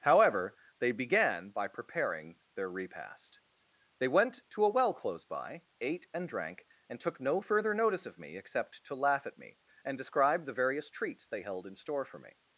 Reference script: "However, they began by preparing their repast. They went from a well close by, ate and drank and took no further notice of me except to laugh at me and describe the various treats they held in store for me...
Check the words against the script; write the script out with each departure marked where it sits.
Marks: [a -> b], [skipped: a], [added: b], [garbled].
"However, they began by preparing their repast. They went [from -> to] a well close by, ate and drank and took no further notice of me except to laugh at me and describe the various treats they held in store for me...